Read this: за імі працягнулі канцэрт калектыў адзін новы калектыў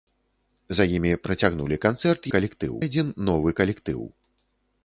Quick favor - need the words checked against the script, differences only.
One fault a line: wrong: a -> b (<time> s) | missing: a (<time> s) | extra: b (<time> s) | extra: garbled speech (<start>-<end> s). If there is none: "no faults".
no faults